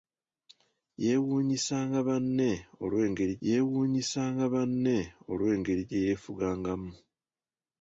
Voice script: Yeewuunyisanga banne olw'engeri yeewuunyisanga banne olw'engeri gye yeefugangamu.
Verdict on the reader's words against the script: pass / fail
pass